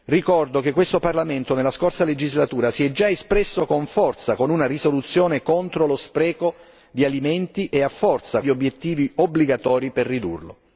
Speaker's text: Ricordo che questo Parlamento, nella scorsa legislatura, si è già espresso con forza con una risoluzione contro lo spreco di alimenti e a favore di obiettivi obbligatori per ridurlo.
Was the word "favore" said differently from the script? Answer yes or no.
yes